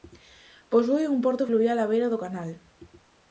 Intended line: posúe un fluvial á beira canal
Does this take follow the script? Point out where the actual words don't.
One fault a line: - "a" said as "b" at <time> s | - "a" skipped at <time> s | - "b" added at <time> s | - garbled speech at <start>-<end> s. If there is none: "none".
- "porto" added at 1.2 s
- "do" added at 2.1 s